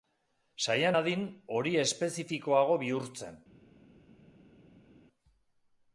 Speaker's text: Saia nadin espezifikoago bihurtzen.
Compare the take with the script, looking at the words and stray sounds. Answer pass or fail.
fail